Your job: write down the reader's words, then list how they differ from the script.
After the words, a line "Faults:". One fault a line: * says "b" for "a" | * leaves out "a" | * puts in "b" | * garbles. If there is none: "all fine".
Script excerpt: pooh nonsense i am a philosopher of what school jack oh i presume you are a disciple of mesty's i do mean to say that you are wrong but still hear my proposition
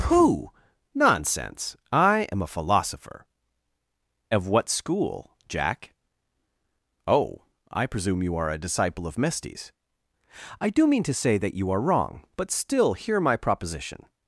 pooh nonsense i am a philosopher of what school jack oh i presume you are a disciple of mesty's i do mean to say that you are wrong but still hear my proposition
Faults:
all fine